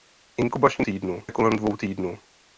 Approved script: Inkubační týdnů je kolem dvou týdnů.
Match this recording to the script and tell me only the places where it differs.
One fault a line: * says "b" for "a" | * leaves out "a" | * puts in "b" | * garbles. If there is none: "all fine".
all fine